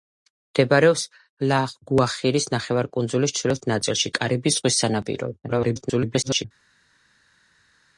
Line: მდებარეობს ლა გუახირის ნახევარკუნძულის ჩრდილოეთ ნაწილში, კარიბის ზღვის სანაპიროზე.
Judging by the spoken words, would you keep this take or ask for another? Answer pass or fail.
fail